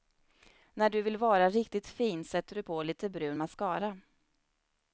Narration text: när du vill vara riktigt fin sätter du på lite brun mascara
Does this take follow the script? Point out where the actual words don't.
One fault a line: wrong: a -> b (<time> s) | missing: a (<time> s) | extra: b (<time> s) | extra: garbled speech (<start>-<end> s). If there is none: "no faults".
no faults